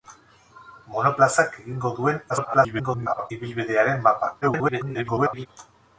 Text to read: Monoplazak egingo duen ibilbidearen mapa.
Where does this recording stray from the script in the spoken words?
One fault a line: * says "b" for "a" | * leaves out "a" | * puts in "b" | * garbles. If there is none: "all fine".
* garbles
* garbles